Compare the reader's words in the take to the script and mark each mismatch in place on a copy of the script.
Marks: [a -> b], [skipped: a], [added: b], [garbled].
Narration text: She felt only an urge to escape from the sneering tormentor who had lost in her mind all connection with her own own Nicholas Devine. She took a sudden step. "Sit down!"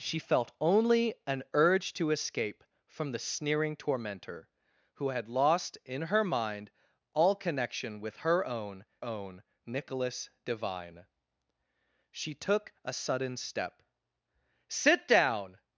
She felt only an urge to escape from the sneering tormentor who had lost in her mind all connection with her own own Nicholas Devine. She took a sudden step. "Sit down!"